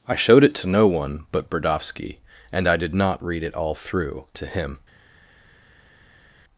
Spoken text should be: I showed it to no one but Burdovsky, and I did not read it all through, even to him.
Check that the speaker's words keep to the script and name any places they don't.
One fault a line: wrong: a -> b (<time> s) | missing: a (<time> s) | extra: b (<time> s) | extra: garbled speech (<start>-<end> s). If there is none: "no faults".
missing: even (4.2 s)